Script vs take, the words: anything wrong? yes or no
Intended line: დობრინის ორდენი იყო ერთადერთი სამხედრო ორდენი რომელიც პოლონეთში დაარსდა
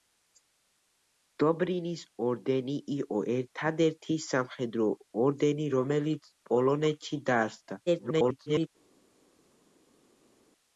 yes